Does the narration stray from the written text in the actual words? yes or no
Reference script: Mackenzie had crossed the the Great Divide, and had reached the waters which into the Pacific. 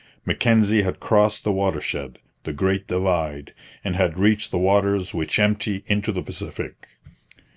yes